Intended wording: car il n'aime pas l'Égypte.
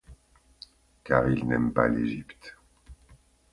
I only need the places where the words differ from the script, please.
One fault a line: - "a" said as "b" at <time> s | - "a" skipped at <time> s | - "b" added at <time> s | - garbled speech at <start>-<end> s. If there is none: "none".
none